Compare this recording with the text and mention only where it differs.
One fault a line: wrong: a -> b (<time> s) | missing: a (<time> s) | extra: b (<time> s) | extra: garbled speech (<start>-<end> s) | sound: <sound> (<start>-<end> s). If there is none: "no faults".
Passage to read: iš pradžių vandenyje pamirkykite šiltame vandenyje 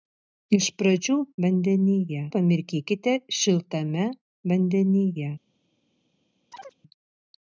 sound: chirp (6.5-6.8 s)